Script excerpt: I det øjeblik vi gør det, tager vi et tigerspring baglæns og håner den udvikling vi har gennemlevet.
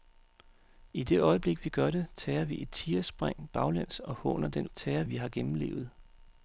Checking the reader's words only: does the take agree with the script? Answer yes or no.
no